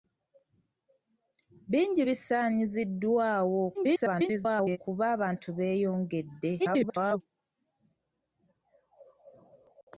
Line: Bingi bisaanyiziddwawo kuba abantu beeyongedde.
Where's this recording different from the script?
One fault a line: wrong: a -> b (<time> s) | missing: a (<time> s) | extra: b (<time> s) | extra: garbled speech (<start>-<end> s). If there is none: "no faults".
extra: garbled speech (3.7-4.8 s)
extra: garbled speech (6.6-7.2 s)